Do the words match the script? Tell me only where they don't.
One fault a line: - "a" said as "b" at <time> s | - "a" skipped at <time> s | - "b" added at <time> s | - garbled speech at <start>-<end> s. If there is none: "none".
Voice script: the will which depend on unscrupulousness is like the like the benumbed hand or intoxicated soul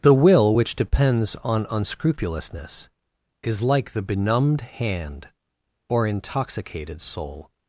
- "depend" said as "depends" at 0.8 s
- "like the" skipped at 4.0 s